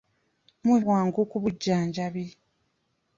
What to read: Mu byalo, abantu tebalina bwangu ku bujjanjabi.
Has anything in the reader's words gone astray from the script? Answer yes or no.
yes